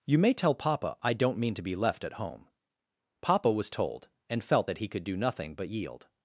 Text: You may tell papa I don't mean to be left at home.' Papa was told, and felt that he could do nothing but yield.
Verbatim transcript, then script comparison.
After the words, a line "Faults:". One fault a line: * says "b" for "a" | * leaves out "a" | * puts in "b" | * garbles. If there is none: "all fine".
You may tell papa I don't mean to be left at home.' Papa was told, and felt that he could do nothing but yield.
Faults:
all fine